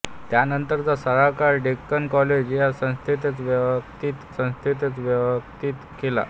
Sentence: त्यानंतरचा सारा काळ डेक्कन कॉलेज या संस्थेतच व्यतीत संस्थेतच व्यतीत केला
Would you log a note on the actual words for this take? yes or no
no